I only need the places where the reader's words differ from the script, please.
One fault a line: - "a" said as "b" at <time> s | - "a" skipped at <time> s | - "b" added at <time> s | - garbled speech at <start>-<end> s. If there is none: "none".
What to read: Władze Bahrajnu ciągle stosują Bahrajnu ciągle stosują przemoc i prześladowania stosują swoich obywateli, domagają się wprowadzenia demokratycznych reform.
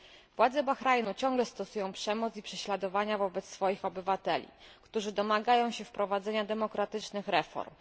- "Bahrajnu ciągle stosują" skipped at 1.9 s
- "stosują" said as "wobec" at 3.2 s
- "którzy" added at 4.8 s